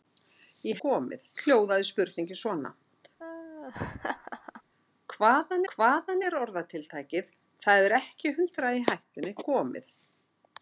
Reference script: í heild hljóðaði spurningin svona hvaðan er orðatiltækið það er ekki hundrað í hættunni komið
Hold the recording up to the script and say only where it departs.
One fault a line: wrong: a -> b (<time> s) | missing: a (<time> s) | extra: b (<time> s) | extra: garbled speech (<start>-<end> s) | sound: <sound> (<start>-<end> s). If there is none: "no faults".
wrong: heild -> komið (0.8 s)
sound: laugh (3.2-4.6 s)
extra: hvaðan (5.7 s)